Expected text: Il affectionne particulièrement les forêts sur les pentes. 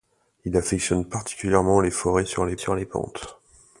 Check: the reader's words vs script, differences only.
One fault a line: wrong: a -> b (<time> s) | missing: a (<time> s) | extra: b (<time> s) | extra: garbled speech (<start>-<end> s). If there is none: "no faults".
extra: sur les (2.6 s)